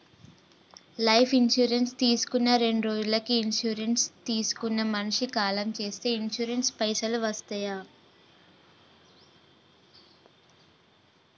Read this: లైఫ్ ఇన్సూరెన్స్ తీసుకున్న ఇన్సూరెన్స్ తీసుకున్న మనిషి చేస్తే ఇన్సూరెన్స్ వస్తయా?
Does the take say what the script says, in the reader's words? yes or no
no